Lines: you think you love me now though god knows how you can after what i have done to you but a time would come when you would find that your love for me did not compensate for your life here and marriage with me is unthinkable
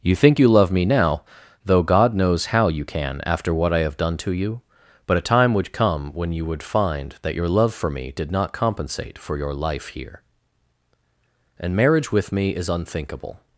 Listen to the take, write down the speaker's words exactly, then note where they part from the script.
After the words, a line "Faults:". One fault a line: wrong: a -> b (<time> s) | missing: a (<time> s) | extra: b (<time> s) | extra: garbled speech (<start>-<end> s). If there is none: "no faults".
you think you love me now though god knows how you can after what i have done to you but a time would come when you would find that your love for me did not compensate for your life here and marriage with me is unthinkable
Faults:
no faults